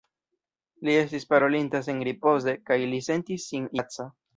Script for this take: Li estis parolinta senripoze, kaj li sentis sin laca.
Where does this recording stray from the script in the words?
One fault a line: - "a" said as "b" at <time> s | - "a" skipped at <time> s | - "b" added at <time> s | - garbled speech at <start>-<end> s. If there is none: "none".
none